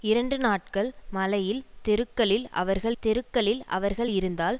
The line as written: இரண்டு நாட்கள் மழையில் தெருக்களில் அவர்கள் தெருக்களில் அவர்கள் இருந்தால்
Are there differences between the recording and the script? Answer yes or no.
no